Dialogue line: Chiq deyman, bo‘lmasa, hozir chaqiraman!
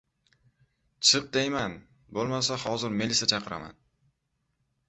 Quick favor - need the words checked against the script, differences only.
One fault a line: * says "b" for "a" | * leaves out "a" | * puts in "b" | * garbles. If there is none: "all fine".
* puts in "melisa"